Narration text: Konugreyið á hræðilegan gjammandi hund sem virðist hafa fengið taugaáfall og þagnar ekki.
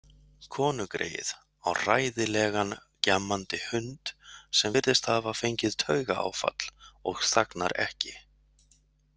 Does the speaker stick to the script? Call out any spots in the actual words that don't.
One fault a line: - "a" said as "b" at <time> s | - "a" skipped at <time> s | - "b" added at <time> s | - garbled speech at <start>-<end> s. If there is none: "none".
none